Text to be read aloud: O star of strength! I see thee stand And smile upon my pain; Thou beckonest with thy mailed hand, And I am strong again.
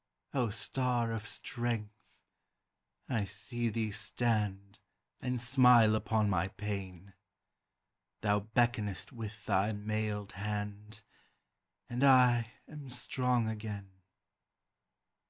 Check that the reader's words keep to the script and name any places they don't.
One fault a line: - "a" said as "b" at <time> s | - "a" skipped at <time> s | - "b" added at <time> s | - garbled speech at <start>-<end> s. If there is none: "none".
none